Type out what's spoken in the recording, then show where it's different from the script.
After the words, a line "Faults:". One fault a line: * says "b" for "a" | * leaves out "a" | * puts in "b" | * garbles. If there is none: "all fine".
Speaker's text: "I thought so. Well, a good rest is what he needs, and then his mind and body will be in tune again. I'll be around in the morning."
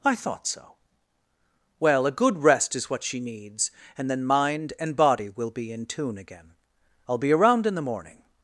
"I thought so. Well, a good rest is what she needs, and then mind and body will be in tune again. I'll be around in the morning."
Faults:
* says "she" for "he"
* leaves out "his"